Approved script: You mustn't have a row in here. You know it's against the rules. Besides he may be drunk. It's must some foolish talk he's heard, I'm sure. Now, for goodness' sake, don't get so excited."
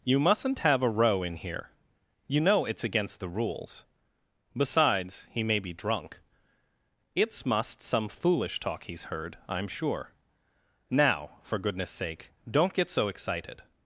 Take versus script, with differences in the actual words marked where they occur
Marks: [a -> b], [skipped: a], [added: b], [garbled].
You mustn't have a row in here. You know it's against the rules. Besides he may be drunk. It's must some foolish talk he's heard, I'm sure. Now, for goodness' sake, don't get so excited."